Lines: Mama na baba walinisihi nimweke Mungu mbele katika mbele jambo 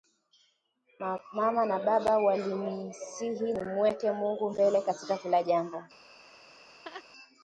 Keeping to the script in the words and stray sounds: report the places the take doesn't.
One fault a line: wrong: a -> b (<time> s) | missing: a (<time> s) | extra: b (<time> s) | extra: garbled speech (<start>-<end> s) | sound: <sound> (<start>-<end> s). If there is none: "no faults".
wrong: mbele -> kila (5.2 s)
sound: laugh (6.2-7.0 s)